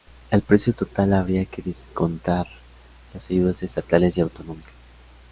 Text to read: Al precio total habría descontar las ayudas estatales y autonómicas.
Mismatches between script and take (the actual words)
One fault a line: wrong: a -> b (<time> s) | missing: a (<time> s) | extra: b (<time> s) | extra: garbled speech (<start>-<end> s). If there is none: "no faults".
extra: que (1.4 s)